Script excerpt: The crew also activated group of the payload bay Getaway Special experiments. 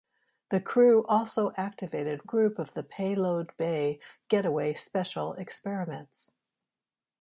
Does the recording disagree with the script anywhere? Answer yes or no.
no